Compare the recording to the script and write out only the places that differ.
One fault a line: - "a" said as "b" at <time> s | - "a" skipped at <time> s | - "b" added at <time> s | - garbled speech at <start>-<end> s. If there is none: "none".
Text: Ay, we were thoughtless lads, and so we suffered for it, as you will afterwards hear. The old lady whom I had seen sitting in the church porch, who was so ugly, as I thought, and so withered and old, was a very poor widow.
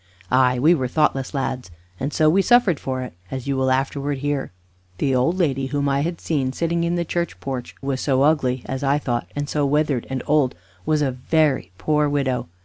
- "who" skipped at 7.8 s